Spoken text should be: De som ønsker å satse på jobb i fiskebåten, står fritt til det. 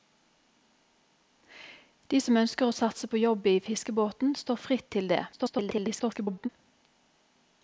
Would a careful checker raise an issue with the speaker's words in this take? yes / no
yes